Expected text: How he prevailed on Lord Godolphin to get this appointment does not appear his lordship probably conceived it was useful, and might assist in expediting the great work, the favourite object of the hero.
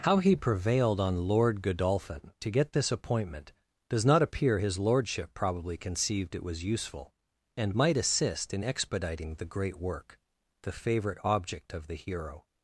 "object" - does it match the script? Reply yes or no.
yes